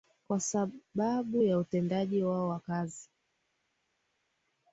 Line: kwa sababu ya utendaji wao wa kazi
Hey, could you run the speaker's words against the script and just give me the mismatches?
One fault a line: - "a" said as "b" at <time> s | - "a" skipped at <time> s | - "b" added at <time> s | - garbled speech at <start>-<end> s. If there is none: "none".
none